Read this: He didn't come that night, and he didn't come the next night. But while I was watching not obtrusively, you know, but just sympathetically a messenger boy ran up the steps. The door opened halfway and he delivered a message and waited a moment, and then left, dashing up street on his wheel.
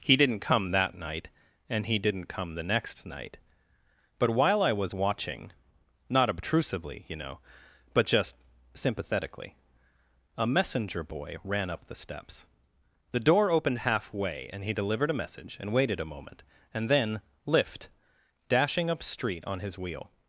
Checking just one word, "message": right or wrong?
right